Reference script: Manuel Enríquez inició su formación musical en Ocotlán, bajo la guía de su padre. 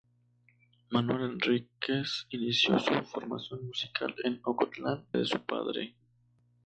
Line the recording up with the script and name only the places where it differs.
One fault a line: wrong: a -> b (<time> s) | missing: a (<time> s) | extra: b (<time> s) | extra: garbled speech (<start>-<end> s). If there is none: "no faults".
missing: bajo la guía (5.1 s)